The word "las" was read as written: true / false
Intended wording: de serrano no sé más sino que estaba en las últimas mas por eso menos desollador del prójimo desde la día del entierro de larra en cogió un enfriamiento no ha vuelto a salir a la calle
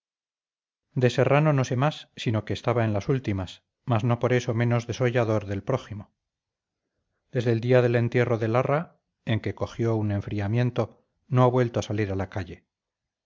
true